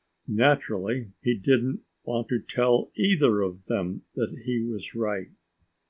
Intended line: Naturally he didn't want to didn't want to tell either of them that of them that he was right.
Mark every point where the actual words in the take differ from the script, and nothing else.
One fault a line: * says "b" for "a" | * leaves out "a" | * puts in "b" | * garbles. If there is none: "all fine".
* leaves out "didn't want to"
* leaves out "of them that"